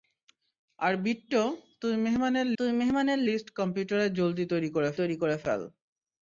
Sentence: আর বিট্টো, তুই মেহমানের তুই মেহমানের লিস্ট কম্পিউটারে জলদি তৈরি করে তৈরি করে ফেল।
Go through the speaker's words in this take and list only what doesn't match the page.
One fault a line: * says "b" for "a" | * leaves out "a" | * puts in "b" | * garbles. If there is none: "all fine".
all fine